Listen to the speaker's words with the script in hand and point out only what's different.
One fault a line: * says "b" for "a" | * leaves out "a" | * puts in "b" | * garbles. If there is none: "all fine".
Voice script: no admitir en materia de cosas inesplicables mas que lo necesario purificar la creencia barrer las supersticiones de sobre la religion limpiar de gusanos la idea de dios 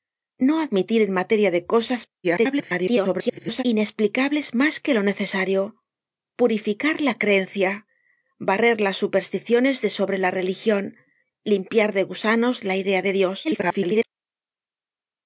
* garbles
* garbles